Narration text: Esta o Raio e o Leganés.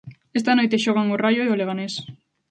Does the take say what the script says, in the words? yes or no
no